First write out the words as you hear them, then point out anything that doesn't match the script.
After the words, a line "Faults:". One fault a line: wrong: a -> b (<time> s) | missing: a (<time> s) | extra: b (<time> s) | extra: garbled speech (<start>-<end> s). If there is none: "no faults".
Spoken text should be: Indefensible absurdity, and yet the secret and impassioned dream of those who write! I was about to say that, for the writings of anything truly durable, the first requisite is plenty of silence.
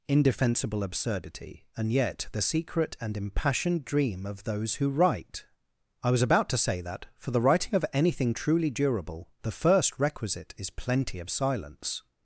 Indefensible absurdity, and yet the secret and impassioned dream of those who write! I was about to say that, for the writing of anything truly durable, the first requisite is plenty of silence.
Faults:
wrong: writings -> writing (7.4 s)